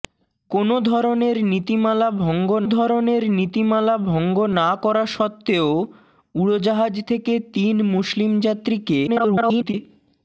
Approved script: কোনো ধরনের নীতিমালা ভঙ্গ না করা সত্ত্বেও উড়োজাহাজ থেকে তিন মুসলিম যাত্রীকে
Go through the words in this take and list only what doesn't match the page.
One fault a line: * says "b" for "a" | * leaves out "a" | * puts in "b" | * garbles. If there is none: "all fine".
* puts in "ধরনের নীতিমালা ভঙ্গ"
* garbles